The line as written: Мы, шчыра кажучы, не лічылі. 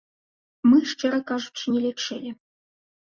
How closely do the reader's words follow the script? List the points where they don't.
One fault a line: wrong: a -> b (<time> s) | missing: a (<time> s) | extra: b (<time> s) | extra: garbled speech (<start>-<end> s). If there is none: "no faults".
no faults